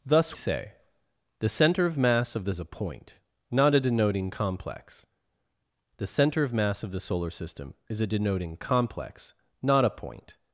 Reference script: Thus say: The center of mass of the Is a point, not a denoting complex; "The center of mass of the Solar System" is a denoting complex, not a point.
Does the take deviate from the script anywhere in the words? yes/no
no